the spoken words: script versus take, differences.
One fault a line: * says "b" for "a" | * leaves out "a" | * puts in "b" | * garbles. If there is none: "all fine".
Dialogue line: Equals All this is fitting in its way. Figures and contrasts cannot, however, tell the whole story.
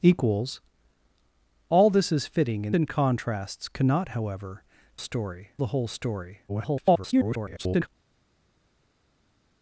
* leaves out "its way Figures"
* says "story" for "tell"
* garbles